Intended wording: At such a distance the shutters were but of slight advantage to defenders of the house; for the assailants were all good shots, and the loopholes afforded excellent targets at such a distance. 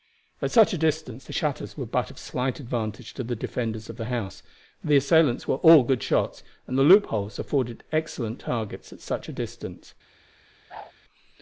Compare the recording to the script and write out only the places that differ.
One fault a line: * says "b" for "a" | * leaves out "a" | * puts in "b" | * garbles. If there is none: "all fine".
* puts in "the"